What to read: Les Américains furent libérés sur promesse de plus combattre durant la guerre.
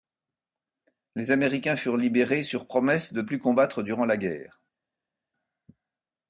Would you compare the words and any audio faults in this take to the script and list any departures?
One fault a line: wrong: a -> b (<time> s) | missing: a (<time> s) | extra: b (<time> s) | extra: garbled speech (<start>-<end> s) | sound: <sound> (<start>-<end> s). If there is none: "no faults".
no faults